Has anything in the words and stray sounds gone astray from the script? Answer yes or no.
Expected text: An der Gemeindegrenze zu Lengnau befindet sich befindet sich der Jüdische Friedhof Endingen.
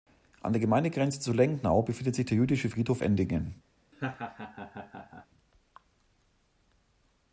yes